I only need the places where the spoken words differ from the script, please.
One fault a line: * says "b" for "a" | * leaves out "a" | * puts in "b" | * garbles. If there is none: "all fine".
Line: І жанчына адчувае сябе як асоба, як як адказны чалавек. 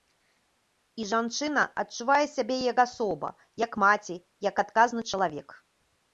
* puts in "маці"